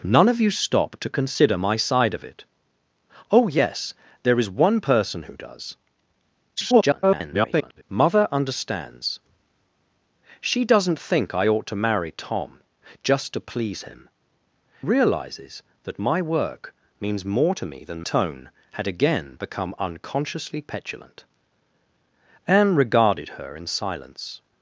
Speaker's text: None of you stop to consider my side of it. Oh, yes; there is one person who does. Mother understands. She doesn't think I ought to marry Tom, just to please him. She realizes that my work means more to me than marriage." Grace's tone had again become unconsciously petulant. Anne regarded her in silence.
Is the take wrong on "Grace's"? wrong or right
wrong